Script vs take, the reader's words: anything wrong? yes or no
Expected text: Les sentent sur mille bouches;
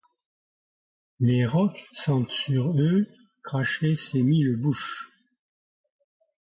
yes